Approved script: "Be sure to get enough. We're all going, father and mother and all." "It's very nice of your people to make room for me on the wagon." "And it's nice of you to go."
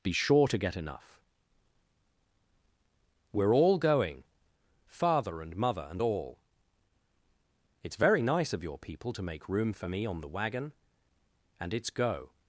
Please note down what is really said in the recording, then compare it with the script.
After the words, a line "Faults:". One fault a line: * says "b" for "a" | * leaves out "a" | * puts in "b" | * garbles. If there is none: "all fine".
"Be sure to get enough. We're all going, father and mother and all." "It's very nice of your people to make room for me on the wagon." "And it's go."
Faults:
* leaves out "nice of you to"